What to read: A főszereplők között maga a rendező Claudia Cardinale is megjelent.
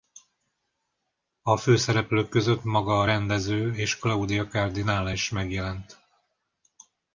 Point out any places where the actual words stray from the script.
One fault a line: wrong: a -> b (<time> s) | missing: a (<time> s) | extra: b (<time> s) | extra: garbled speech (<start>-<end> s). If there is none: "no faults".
extra: és (3.7 s)